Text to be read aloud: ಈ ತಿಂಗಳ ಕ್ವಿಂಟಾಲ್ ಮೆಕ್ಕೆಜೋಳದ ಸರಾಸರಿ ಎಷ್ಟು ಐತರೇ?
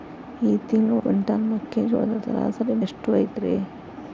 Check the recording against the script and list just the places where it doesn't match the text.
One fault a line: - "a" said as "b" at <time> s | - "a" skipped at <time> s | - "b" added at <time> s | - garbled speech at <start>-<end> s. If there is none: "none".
none